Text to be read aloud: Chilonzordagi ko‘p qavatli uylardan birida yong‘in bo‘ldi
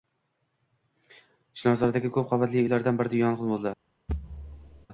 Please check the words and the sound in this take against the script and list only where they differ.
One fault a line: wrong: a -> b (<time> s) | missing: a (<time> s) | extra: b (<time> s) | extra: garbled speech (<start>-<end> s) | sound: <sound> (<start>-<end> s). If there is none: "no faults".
sound: thud (4.1-4.9 s)